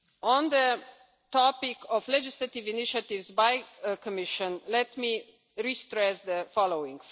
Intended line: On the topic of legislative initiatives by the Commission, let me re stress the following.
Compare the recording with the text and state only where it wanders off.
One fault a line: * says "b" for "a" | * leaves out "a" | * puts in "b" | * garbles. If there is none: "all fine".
all fine